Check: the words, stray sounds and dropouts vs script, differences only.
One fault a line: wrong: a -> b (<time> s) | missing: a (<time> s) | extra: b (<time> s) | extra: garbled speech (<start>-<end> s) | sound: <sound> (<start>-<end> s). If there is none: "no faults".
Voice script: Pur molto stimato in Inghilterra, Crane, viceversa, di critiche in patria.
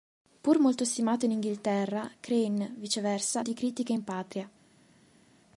no faults